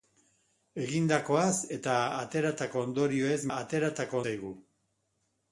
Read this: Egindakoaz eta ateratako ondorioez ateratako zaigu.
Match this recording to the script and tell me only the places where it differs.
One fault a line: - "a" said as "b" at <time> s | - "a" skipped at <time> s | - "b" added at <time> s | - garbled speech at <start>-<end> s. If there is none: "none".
none